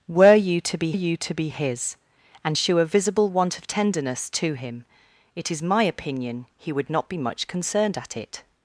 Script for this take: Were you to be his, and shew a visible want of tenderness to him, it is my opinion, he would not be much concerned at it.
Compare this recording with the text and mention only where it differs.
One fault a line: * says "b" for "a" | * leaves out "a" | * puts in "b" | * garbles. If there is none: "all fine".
* puts in "you to be"